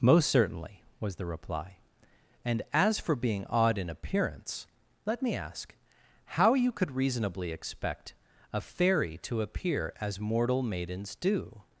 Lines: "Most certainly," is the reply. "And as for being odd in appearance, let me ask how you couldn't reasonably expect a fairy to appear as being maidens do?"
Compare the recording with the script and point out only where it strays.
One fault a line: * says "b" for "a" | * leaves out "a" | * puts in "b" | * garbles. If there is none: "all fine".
* says "was" for "is"
* says "could" for "couldn't"
* says "mortal" for "being"